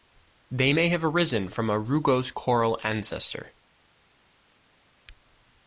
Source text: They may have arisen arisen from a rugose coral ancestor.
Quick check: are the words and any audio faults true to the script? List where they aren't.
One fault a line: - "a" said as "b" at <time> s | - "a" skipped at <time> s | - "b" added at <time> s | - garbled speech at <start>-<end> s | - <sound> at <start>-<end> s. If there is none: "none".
- "arisen" skipped at 1.5 s